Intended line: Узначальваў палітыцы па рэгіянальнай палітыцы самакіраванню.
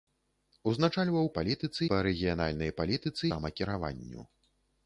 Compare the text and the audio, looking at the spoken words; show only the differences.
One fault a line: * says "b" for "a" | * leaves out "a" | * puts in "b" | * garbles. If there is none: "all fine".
all fine